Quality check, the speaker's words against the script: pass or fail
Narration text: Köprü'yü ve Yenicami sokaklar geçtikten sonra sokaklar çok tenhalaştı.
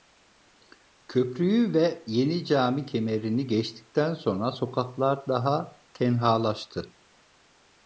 fail